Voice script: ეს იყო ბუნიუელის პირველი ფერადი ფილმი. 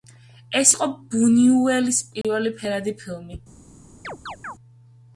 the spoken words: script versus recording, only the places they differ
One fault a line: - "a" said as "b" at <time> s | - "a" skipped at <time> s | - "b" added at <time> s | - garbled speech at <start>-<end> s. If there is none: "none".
none